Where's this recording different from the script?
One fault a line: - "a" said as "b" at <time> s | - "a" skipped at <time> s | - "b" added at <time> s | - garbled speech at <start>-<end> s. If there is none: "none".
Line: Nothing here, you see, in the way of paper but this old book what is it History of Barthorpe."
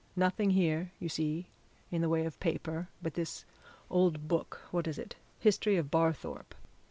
none